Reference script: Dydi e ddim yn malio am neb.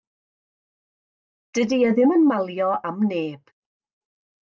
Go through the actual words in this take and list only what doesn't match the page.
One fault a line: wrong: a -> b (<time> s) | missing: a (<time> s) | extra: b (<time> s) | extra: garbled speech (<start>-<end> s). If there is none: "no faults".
no faults